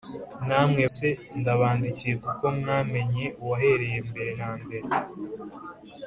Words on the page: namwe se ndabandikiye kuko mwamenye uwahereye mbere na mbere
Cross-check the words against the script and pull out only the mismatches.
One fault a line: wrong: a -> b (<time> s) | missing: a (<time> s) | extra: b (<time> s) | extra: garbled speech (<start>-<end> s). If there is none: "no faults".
no faults